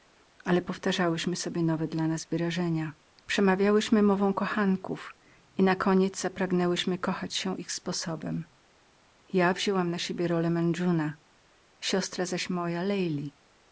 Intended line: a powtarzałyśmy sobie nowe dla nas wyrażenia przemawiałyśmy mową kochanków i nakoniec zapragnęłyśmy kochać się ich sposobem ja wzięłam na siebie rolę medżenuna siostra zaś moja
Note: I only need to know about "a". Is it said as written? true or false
false